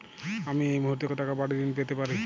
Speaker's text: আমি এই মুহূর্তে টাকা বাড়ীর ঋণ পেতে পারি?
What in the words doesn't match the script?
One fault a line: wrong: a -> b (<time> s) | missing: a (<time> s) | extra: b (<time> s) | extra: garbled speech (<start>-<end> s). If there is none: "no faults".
no faults